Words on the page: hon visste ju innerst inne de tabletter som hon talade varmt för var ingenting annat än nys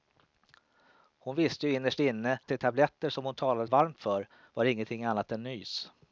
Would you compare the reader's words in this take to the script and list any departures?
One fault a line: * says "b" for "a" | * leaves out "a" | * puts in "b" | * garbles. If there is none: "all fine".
all fine